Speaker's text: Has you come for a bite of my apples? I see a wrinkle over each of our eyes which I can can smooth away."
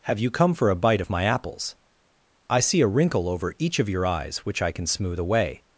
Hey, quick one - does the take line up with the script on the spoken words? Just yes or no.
no